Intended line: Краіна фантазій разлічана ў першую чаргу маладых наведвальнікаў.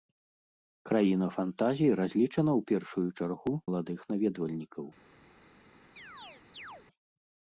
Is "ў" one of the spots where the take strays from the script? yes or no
no